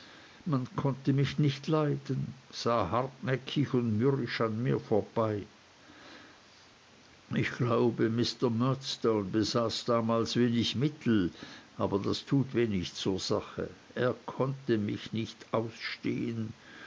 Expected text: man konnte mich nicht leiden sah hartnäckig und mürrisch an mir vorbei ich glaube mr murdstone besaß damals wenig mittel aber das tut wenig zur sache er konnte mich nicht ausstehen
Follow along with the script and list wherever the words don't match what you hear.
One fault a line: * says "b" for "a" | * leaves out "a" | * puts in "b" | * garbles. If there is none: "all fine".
all fine